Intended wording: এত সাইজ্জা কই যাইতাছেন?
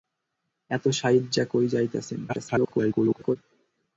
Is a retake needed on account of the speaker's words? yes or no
yes